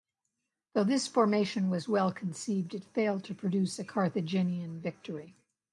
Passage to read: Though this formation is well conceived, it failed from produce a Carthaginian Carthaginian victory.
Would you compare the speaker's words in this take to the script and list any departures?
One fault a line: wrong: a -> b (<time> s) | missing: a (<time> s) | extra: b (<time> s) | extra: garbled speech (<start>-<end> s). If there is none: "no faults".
wrong: is -> was (1.7 s)
wrong: from -> to (3.2 s)
missing: Carthaginian (4.8 s)